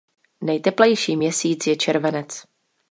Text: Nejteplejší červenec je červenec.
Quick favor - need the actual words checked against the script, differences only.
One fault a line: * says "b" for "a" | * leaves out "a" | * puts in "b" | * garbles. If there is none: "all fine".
* says "měsíc" for "červenec"